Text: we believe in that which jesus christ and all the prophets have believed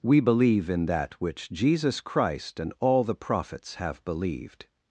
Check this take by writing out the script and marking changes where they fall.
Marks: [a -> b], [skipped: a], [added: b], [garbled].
we believe in that which jesus christ and all the prophets have believed